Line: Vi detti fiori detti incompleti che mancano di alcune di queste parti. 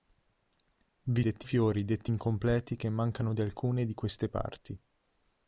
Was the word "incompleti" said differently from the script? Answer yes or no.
no